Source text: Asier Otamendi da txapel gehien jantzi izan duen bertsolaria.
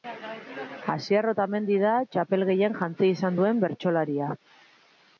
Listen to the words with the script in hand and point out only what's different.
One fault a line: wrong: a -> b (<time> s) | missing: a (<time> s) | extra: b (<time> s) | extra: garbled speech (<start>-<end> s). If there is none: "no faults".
no faults